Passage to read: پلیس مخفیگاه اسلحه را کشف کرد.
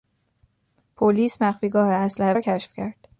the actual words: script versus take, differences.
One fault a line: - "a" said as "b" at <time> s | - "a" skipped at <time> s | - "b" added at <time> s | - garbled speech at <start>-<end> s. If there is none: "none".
none